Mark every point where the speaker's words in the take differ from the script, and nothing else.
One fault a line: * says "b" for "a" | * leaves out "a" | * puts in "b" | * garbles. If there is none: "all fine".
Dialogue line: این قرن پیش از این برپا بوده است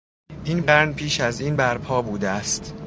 all fine